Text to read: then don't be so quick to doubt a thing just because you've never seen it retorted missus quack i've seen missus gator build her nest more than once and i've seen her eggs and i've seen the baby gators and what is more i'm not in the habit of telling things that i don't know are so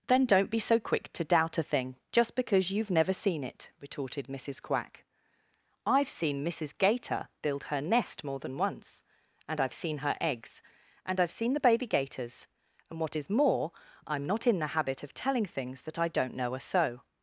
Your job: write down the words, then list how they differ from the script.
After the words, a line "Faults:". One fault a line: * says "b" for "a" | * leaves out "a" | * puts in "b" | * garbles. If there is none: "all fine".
then don't be so quick to doubt a thing just because you've never seen it retorted missus quack i've seen missus gator build her nest more than once and i've seen her eggs and i've seen the baby gators and what is more i'm not in the habit of telling things that i don't know are so
Faults:
all fine